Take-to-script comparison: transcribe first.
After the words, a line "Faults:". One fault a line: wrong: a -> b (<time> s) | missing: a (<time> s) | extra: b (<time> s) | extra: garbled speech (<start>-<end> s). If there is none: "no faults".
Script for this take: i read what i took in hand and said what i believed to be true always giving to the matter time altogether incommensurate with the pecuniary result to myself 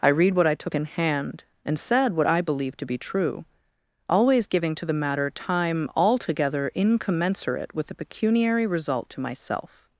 i read what i took in hand and said what i believed to be true always giving to the matter time altogether incommensurate with the pecuniary result to myself
Faults:
no faults